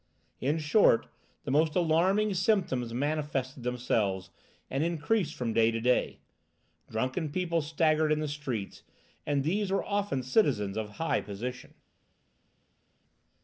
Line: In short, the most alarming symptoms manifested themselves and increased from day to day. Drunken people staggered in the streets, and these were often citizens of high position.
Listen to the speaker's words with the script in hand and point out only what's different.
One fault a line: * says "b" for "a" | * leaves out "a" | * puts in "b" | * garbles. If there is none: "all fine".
all fine